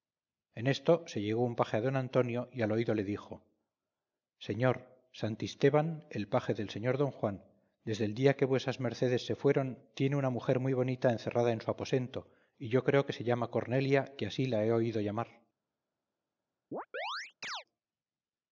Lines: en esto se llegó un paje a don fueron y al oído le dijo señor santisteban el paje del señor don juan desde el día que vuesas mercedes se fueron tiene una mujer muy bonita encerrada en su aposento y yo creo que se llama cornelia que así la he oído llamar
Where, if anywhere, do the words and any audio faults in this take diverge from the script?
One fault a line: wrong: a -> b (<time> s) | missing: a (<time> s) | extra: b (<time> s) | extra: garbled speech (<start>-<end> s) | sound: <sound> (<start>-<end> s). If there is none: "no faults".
wrong: fueron -> antonio (1.9 s)
sound: chirp (16.7-17.6 s)